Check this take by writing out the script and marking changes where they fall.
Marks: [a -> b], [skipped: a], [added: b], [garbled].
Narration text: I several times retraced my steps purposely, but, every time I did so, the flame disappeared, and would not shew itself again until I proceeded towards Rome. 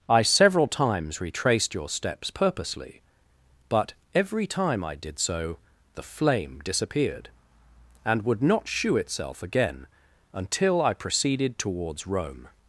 I several times retraced [my -> your] steps purposely, but, every time I did so, the flame disappeared, and would not shew itself again until I proceeded towards Rome.